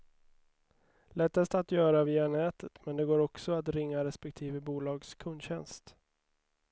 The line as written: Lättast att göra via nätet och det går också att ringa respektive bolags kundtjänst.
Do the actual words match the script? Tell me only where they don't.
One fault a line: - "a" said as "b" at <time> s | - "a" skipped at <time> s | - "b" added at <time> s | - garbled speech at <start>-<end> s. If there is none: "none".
- "och" said as "men" at 2.9 s